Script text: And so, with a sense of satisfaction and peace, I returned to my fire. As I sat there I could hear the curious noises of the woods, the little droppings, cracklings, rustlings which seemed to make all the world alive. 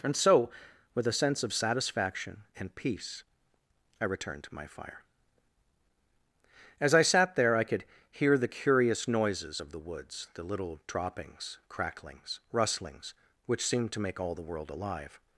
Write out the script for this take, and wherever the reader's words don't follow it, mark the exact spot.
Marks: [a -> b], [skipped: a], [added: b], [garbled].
And so, with a sense of satisfaction and peace, I returned to my fire. As I sat there I could hear the curious noises of the woods, the little droppings, cracklings, rustlings which seemed to make all the world alive.